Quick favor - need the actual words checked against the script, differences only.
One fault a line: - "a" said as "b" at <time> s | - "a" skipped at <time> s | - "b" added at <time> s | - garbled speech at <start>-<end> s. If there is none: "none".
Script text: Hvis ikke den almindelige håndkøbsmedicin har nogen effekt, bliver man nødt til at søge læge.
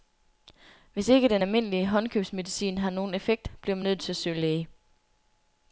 none